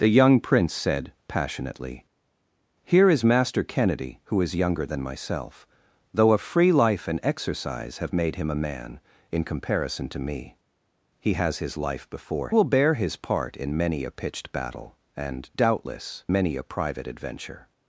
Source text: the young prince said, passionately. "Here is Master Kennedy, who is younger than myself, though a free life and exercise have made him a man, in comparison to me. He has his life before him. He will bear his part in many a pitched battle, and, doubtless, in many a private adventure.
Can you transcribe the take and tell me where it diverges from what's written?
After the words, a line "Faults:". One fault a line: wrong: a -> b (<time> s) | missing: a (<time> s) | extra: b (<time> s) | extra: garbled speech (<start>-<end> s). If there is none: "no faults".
the young prince said, passionately. "Here is Master Kennedy, who is younger than myself, though a free life and exercise have made him a man, in comparison to me. He has his life before will bear his part in many a pitched battle, and, doubtless, many a private adventure.
Faults:
missing: him He (12.5 s)
missing: in (16.2 s)